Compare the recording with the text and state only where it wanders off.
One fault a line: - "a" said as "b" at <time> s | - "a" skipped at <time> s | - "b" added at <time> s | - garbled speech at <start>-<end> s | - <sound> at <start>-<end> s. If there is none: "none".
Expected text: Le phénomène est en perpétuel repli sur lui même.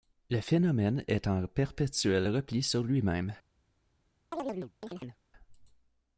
- chirp at 4.3-5.2 s